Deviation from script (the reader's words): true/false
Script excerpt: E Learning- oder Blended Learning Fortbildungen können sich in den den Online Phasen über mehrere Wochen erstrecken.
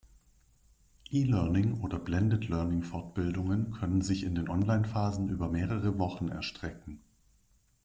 true